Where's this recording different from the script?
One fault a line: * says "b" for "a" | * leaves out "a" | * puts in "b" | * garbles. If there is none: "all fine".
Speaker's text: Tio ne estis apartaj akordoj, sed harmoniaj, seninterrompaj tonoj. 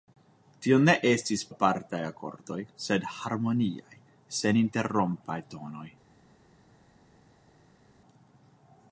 all fine